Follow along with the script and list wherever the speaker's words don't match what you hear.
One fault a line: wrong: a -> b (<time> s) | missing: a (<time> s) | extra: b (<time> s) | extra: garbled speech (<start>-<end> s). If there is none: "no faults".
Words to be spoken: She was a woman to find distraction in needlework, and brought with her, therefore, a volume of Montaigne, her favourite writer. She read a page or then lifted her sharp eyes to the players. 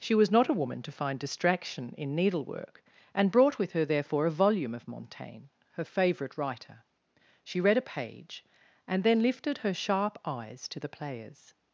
extra: not (0.3 s)
wrong: or -> and (8.9 s)